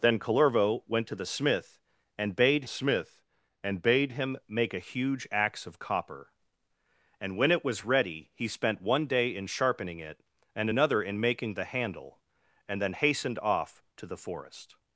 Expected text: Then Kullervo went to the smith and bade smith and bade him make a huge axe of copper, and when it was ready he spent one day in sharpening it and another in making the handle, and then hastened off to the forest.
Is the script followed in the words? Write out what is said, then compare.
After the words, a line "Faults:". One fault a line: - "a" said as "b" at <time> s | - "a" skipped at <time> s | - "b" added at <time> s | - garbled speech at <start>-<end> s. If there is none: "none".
Then Kullervo went to the smith and bade smith and bade him make a huge axe of copper, and when it was ready he spent one day in sharpening it and another in making the handle, and then hastened off to the forest.
Faults:
none